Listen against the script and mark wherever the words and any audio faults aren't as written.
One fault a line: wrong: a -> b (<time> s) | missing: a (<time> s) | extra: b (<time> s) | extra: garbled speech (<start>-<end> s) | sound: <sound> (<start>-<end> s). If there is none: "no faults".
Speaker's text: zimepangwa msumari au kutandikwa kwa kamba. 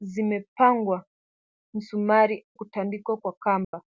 missing: au (2.5 s)
sound: dropout (3.6-3.7 s)